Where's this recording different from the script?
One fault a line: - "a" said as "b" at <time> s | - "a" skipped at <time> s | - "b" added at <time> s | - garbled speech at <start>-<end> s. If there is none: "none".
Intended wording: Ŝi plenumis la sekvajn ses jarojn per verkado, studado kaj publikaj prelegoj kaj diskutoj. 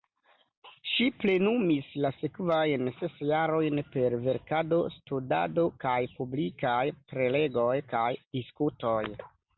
none